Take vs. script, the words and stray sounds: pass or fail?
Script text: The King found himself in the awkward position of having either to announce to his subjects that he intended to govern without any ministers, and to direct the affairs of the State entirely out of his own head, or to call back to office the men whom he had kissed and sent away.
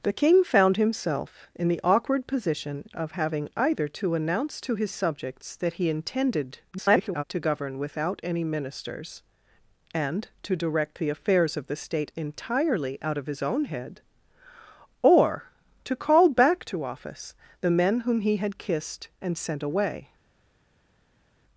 fail